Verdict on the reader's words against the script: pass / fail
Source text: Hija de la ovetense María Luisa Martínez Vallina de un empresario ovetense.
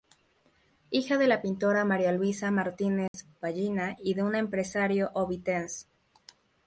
fail